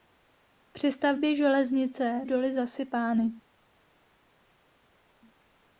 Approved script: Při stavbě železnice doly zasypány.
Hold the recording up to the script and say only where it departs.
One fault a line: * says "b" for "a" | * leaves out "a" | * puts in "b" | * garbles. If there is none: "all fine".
all fine